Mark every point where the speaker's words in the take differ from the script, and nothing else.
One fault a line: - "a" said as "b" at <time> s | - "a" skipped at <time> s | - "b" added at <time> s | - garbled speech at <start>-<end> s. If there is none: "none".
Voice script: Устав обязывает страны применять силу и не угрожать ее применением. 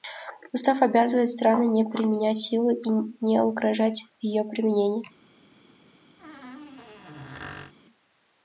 - "не" added at 1.7 s